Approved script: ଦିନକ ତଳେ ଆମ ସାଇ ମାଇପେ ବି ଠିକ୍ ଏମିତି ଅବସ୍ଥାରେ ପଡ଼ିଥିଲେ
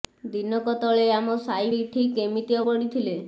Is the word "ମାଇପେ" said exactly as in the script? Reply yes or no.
no